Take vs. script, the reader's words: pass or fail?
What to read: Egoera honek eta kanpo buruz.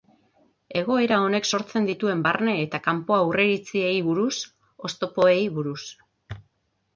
fail